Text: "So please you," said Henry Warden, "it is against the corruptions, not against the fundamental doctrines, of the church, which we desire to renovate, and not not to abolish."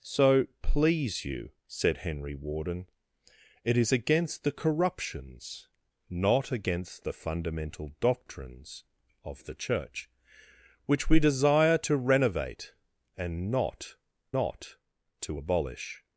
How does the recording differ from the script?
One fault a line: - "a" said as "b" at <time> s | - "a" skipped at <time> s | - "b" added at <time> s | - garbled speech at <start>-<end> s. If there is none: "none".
none